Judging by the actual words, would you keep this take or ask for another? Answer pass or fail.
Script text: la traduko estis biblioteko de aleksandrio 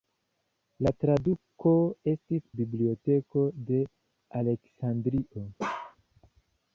pass